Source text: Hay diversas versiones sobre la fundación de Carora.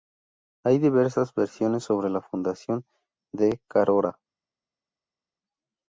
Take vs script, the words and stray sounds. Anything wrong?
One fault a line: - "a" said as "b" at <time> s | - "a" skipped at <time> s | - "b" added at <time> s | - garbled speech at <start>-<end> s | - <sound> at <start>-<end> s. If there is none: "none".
none